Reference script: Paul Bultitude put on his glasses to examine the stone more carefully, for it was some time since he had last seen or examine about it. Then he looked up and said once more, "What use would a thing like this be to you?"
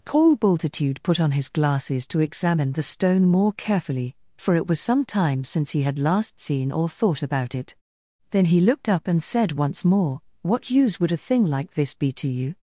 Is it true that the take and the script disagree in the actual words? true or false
true